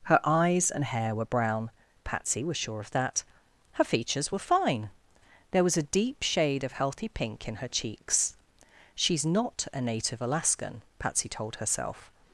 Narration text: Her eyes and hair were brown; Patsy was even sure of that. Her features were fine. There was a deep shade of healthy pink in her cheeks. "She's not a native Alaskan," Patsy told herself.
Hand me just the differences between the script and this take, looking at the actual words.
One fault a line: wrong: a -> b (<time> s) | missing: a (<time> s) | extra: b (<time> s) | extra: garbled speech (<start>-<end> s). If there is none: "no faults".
missing: even (2.6 s)